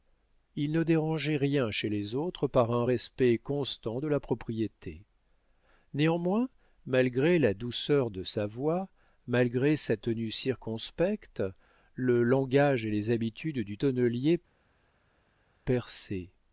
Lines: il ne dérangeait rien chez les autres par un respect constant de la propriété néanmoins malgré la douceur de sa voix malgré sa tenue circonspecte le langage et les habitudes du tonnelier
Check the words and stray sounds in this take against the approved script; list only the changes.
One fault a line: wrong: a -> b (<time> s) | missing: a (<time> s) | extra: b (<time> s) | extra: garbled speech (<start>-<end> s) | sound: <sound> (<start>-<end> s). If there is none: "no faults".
no faults